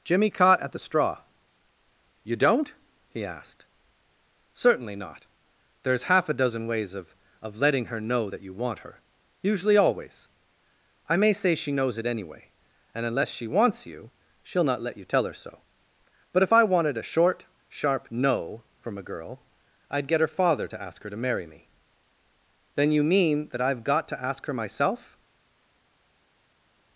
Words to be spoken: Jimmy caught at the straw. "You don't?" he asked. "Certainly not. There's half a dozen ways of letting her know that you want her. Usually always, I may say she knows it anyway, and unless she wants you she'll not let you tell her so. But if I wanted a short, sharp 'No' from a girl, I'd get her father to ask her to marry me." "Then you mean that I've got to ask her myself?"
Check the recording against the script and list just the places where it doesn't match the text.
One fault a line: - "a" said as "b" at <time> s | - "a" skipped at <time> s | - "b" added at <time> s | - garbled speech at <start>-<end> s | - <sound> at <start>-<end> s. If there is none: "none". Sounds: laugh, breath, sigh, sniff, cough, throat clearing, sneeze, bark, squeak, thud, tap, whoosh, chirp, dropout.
- "of" added at 7.4 s